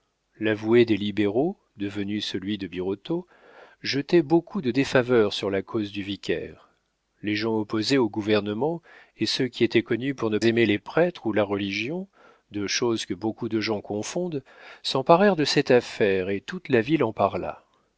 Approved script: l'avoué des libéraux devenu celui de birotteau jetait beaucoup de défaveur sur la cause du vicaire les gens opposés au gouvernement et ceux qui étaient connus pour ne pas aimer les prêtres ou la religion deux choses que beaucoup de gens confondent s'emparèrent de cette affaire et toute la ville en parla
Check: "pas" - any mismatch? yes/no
yes